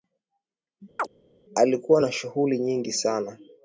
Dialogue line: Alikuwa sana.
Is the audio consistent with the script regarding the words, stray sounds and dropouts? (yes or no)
no